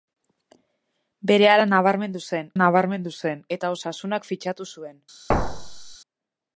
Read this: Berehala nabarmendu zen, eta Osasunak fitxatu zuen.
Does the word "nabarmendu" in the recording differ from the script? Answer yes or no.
no